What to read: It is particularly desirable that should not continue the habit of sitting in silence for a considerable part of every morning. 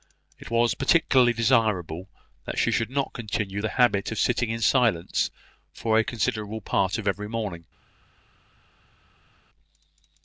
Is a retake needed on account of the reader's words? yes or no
yes